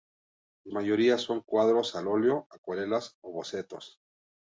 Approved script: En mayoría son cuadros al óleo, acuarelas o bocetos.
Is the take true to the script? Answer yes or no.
yes